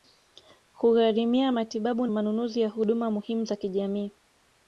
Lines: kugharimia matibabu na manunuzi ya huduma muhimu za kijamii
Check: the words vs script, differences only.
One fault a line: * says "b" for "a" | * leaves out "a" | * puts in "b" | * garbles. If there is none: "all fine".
* leaves out "na"